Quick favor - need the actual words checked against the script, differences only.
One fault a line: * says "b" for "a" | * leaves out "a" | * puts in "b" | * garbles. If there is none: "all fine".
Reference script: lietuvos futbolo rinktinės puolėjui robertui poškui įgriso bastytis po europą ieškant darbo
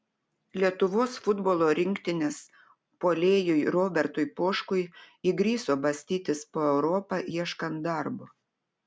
all fine